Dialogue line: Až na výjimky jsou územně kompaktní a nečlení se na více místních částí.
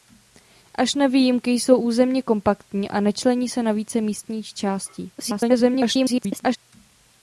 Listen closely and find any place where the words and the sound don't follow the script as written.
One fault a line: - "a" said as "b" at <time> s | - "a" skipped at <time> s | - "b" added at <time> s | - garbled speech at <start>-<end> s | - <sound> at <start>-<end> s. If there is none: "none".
- garbled speech at 5.2-6.6 s